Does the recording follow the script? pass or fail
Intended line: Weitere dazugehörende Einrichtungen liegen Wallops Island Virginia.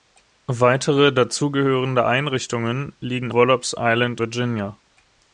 pass